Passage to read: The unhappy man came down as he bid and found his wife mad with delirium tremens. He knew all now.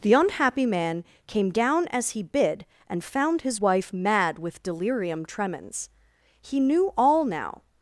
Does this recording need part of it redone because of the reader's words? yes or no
no